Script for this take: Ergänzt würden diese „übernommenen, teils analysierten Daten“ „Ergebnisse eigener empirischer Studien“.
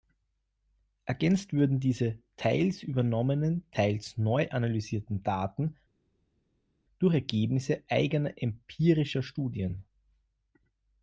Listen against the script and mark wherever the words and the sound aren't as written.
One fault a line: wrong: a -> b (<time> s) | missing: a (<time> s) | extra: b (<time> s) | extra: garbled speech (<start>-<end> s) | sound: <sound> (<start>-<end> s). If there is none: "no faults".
extra: teils (2.4 s)
extra: neu (4.2 s)
extra: durch (7.0 s)